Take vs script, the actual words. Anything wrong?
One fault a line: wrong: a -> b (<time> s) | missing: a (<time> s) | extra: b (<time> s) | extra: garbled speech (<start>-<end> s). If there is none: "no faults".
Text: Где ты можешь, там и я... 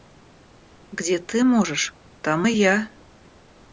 no faults